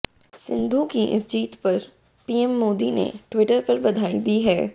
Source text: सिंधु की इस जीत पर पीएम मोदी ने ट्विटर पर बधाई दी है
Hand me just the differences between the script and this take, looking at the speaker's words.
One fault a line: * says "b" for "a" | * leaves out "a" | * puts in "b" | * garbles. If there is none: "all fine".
all fine